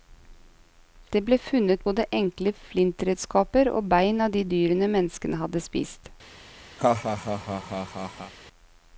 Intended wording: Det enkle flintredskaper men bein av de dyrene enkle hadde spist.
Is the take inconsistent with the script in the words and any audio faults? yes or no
yes